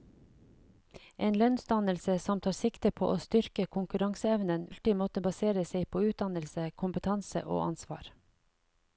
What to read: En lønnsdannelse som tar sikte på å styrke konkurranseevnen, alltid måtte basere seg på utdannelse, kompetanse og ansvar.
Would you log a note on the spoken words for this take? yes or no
no